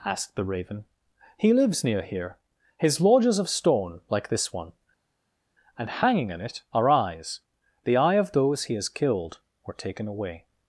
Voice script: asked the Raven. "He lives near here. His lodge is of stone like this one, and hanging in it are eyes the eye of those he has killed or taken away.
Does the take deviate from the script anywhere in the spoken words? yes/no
no